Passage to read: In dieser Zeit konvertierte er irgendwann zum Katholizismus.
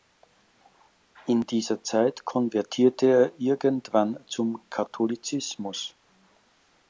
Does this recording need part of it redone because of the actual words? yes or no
no